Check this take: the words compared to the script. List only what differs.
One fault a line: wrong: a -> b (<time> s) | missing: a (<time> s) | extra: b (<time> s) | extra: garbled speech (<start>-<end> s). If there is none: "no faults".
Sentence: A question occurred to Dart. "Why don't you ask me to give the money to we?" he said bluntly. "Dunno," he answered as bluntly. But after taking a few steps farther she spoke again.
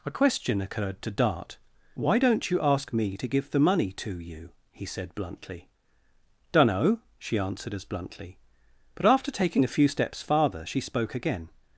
wrong: we -> you (4.2 s)
wrong: he -> she (7.2 s)